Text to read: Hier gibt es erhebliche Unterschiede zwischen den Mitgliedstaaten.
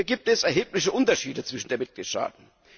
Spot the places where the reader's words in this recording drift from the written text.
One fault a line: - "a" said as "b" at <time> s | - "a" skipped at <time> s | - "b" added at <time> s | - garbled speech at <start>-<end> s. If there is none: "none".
none